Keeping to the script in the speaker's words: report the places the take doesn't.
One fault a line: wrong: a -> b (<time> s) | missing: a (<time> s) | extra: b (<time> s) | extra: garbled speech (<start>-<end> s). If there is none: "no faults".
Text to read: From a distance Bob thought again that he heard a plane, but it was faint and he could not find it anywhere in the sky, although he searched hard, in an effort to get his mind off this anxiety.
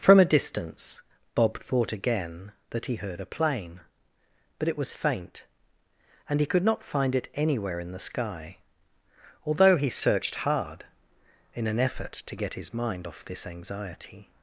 no faults